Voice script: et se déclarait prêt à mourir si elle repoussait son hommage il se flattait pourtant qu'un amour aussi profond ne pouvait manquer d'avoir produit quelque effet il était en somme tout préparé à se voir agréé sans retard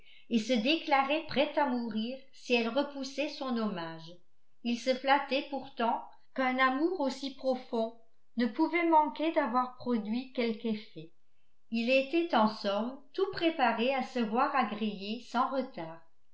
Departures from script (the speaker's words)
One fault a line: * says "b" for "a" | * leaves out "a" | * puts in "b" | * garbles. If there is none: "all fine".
all fine